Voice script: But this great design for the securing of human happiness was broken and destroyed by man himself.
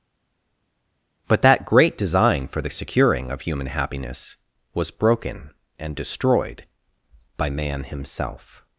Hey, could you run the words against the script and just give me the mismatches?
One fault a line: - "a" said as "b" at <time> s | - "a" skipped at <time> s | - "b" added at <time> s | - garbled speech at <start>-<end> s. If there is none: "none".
- "this" said as "that" at 1.4 s